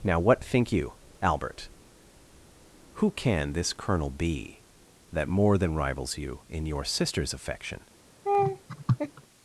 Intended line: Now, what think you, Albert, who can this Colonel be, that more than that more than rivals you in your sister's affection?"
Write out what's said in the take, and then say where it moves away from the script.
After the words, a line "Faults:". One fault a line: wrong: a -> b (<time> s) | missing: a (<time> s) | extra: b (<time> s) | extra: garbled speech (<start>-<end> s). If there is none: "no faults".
Now, what think you, Albert, who can this Colonel be, that more than rivals you in your sister's affection?"
Faults:
missing: that more than (5.8 s)